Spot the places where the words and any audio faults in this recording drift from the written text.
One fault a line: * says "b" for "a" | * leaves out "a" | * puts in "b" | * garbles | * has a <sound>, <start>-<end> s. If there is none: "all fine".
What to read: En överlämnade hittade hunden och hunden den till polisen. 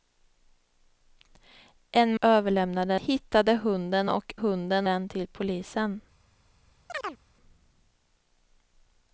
* has a chirp, 6.9-7.2 s